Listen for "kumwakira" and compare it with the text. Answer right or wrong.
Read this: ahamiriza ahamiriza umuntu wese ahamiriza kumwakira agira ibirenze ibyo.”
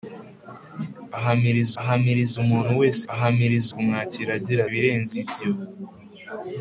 right